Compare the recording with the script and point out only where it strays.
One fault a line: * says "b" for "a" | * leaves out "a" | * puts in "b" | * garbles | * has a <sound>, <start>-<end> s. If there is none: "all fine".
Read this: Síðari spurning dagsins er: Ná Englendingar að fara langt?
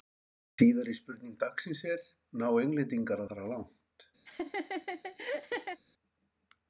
* leaves out "að"
* has a laugh, 4.3-5.8 s